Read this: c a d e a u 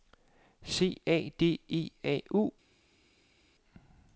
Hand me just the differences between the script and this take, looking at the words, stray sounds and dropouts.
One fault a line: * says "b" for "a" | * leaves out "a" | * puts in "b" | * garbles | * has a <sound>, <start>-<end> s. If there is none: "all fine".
all fine